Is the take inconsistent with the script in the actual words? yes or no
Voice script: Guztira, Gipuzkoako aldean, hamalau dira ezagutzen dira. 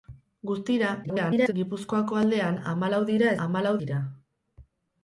yes